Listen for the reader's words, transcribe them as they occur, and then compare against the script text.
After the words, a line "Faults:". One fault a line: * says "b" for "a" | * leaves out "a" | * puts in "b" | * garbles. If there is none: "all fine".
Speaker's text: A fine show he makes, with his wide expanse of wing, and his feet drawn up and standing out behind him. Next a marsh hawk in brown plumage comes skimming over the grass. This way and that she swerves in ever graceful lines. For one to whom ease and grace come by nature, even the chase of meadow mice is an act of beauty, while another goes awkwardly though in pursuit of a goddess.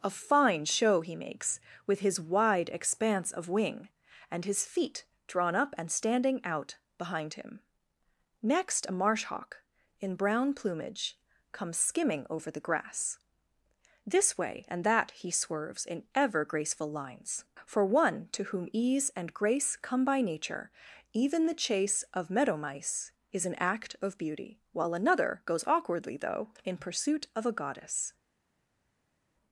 A fine show he makes, with his wide expanse of wing, and his feet drawn up and standing out behind him. Next a marsh hawk in brown plumage comes skimming over the grass. This way and that he swerves in ever graceful lines. For one to whom ease and grace come by nature, even the chase of meadow mice is an act of beauty, while another goes awkwardly though in pursuit of a goddess.
Faults:
* says "he" for "she"